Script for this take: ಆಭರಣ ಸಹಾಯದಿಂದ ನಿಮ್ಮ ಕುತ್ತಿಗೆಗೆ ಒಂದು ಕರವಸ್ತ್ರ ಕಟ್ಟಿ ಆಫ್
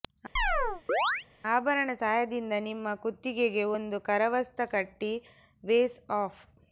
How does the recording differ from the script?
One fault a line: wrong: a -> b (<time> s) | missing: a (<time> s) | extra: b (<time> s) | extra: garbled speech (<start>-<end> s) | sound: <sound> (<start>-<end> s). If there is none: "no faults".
sound: chirp (0.4-1.3 s)
extra: ವೇಸ್ (5.6 s)